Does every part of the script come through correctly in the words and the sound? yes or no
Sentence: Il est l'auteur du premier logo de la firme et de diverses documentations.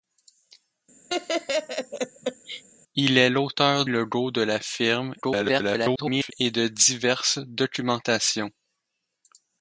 no